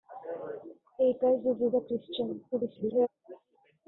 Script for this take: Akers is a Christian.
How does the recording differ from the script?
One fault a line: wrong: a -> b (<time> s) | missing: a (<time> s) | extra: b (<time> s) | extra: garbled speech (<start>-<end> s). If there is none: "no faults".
extra: is (1.6 s)
extra: garbled speech (2.5-3.1 s)